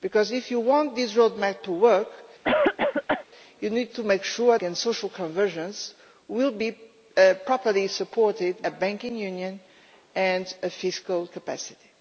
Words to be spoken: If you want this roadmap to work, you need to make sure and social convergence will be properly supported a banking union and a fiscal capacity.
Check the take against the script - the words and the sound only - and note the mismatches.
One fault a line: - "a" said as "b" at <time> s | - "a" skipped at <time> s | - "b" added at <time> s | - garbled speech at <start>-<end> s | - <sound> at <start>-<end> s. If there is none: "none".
- cough at 2.4-3.3 s